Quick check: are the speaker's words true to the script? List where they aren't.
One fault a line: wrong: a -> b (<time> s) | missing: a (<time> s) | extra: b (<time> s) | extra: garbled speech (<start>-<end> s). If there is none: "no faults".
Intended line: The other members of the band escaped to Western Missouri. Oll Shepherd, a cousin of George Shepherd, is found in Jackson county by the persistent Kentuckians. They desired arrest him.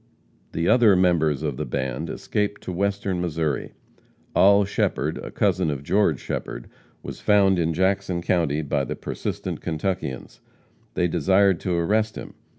wrong: is -> was (7.0 s)
extra: to (11.6 s)